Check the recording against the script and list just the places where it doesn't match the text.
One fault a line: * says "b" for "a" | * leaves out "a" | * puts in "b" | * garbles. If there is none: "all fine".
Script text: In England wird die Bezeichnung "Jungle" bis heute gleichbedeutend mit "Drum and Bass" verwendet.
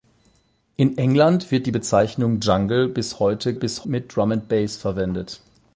* says "bis" for "gleichbedeutend"